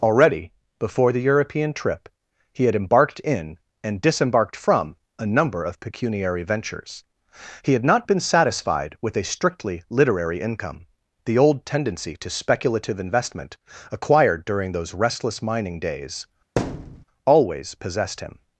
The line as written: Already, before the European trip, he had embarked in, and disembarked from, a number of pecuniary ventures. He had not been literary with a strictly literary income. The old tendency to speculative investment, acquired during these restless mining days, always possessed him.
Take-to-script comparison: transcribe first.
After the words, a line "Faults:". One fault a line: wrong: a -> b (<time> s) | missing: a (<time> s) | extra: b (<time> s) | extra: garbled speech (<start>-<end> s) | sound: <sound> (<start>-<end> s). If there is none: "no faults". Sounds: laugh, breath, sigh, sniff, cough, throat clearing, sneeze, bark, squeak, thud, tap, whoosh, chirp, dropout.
Already, before the European trip, he had embarked in, and disembarked from, a number of pecuniary ventures. He had not been satisfied with a strictly literary income. The old tendency to speculative investment, acquired during those restless mining days, always possessed him.
Faults:
wrong: literary -> satisfied (8.2 s)
wrong: these -> those (14.7 s)
sound: thud (16.6-17.0 s)